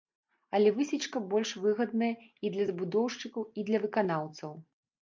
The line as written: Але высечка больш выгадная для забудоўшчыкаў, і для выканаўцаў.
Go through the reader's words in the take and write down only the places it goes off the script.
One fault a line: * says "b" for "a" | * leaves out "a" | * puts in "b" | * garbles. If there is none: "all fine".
* puts in "і"